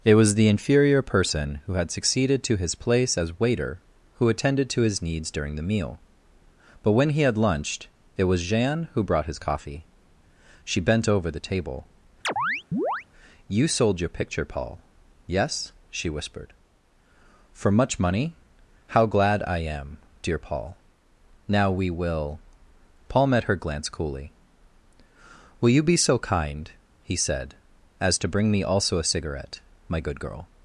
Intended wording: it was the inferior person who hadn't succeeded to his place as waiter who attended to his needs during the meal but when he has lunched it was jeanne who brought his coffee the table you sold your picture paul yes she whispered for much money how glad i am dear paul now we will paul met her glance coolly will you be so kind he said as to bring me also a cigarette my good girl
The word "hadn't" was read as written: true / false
false